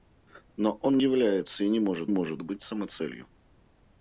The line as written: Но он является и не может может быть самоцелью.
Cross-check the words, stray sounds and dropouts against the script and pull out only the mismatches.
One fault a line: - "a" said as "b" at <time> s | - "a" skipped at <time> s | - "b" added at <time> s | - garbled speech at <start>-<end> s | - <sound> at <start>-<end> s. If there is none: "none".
none